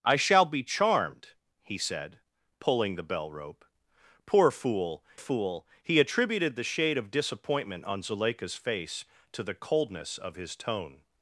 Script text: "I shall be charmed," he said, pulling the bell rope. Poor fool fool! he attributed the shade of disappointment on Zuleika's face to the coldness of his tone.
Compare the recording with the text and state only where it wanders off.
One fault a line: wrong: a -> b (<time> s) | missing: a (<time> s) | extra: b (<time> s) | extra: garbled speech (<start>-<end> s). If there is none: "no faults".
no faults